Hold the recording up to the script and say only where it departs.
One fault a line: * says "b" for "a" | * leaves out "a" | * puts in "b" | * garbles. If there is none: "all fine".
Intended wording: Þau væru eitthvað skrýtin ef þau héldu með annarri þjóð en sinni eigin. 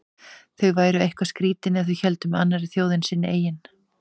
all fine